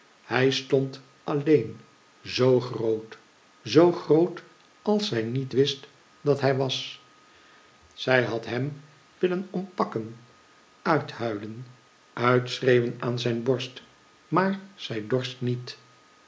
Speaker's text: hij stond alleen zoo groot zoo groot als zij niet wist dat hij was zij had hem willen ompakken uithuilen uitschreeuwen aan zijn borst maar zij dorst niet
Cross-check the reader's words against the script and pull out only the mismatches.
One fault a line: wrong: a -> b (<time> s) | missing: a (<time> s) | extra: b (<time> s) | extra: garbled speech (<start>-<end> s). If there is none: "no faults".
no faults